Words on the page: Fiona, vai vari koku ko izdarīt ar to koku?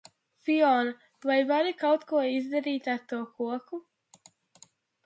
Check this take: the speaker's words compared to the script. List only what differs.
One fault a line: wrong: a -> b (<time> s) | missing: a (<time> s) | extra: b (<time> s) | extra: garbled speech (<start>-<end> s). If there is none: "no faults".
wrong: koku -> kaut (1.8 s)